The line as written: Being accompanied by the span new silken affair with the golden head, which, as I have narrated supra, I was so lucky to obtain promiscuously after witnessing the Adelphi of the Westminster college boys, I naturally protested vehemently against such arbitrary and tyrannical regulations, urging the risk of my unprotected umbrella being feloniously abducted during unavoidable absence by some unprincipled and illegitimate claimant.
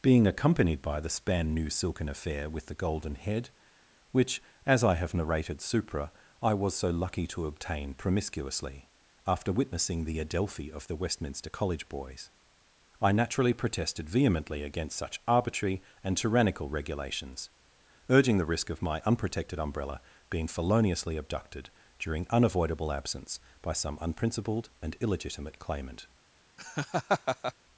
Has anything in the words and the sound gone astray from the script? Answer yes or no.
yes